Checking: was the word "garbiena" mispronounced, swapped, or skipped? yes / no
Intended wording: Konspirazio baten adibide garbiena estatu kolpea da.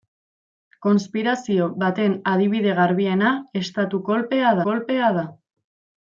no